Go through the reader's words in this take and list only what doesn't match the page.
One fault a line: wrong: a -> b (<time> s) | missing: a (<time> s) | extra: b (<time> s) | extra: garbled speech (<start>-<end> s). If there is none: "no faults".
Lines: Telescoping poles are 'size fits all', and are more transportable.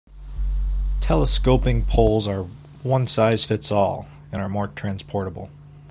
extra: one (2.8 s)